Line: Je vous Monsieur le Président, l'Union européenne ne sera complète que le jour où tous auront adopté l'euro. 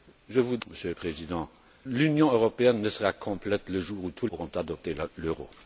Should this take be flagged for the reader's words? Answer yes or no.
no